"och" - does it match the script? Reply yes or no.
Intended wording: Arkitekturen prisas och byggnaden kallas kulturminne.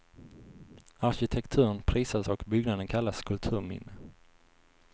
yes